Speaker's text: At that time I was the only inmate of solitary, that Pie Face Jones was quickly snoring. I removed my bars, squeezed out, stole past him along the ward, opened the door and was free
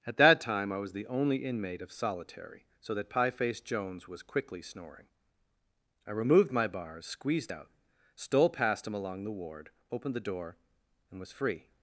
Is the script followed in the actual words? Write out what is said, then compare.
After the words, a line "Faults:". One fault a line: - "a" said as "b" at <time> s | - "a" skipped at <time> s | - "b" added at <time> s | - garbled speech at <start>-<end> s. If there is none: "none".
At that time I was the only inmate of solitary, so that Pie Face Jones was quickly snoring. I removed my bars, squeezed out, stole past him along the ward, opened the door and was free
Faults:
- "so" added at 2.8 s